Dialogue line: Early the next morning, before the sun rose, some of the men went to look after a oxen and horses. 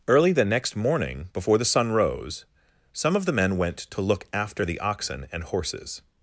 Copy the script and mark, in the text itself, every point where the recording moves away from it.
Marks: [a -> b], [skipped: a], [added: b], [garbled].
Early the next morning, before the sun rose, some of the men went to look after [a -> the] oxen and horses.